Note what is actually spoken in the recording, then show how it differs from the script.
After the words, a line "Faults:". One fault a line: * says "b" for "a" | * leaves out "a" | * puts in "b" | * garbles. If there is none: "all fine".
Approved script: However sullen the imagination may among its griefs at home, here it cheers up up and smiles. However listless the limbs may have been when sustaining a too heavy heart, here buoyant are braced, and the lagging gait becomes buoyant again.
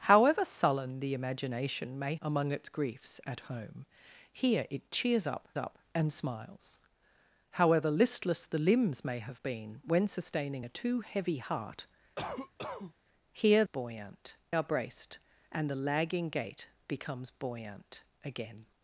However sullen the imagination may among its griefs at home, here it cheers up up and smiles. However listless the limbs may have been when sustaining a too heavy heart, here buoyant are braced, and the lagging gait becomes buoyant again.
Faults:
all fine